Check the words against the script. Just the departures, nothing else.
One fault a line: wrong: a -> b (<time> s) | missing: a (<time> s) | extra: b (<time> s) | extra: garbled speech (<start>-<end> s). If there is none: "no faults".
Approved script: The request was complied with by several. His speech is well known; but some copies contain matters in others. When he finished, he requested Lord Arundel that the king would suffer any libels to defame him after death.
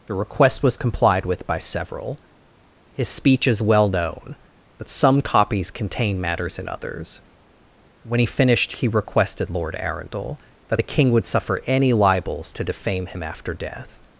no faults